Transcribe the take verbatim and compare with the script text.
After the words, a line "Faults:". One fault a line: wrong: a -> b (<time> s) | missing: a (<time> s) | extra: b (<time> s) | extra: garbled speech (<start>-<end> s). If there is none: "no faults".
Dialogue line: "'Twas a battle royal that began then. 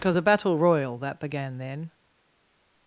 "'Because a battle royal that began then.
Faults:
wrong: Twas -> Because (0.0 s)